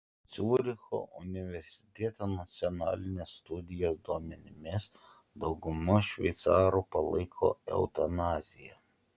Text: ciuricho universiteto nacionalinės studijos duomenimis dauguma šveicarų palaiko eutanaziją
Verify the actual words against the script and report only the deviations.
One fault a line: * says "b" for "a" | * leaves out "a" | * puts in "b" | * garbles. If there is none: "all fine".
all fine